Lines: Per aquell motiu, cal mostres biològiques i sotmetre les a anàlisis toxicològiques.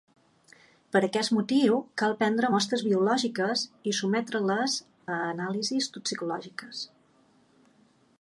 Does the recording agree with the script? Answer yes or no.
no